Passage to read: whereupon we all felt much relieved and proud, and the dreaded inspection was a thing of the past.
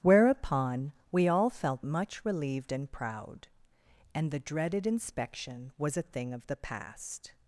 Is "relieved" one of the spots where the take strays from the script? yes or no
no